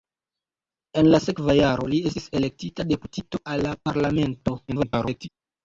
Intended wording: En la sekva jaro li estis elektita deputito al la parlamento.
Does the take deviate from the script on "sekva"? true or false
false